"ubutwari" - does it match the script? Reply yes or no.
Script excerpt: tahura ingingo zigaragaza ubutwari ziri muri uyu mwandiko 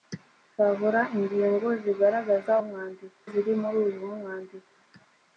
no